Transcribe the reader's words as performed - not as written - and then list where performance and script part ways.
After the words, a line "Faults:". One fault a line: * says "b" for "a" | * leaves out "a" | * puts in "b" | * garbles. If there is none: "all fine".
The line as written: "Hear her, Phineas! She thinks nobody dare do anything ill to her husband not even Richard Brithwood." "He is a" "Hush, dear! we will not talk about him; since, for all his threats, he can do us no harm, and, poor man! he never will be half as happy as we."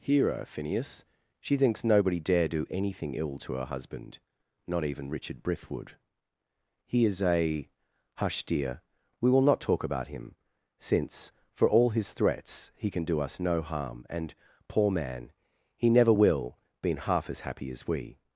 "Hear her, Phineas! She thinks nobody dare do anything ill to her husband not even Richard Brithwood." "He is a" "Hush, dear! we will not talk about him; since, for all his threats, he can do us no harm, and, poor man! he never will been half as happy as we."
Faults:
* says "been" for "be"